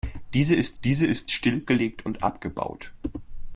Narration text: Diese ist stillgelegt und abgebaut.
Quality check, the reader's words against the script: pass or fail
fail